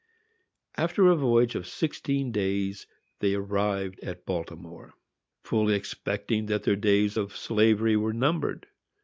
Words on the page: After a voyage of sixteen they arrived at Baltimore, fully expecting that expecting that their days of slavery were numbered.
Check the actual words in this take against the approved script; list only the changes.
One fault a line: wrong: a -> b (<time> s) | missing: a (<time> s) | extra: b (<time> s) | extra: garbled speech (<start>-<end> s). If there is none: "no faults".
extra: days (2.3 s)
missing: expecting that (6.6 s)